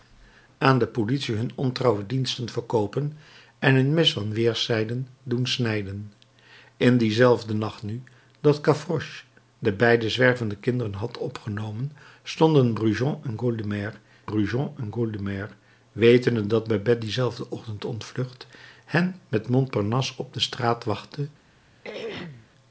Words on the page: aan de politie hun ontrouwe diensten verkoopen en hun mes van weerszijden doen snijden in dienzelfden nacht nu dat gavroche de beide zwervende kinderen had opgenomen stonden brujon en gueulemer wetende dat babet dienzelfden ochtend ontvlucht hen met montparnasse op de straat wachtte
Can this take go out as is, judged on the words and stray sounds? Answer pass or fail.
fail